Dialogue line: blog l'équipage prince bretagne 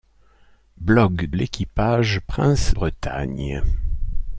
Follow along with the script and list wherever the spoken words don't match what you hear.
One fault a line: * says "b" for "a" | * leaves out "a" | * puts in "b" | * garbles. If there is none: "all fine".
all fine